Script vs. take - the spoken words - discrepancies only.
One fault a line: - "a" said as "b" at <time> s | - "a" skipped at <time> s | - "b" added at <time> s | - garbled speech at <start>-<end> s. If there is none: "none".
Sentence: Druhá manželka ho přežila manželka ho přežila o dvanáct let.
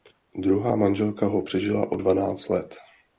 - "manželka ho přežila" skipped at 1.9 s